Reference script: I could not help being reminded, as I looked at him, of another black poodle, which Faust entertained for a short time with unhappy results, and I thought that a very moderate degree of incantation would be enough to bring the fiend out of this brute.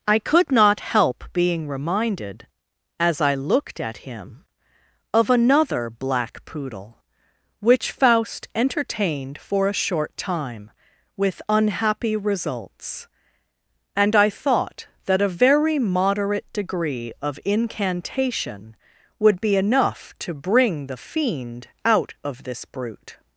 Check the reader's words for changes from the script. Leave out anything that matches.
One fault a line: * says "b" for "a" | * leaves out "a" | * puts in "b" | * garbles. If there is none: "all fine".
all fine